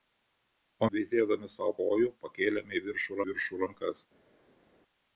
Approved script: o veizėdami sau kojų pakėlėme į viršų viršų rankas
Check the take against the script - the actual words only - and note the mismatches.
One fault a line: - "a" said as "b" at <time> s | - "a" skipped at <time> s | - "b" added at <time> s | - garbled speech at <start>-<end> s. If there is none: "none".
none